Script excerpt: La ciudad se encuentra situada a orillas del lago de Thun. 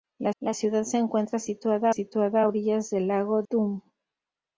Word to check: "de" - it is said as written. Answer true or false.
false